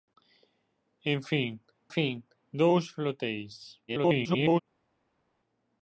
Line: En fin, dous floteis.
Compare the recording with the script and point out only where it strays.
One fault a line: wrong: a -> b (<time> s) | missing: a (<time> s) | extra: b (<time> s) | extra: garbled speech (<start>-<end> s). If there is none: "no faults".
extra: fin (1.9 s)
extra: garbled speech (3.9-4.6 s)